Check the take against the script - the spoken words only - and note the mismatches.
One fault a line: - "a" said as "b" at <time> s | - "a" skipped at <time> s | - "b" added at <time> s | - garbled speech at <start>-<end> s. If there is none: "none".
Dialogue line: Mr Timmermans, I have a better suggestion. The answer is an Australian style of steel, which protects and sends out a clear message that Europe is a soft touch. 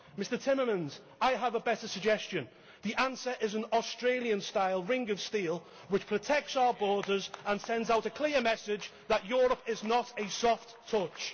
- "ring" added at 4.8 s
- "our borders" added at 6.6 s
- "not" added at 9.8 s